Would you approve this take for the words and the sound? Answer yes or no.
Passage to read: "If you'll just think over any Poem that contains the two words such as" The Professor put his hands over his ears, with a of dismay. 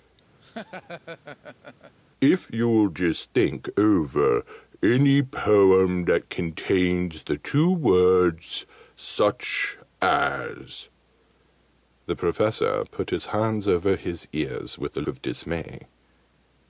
no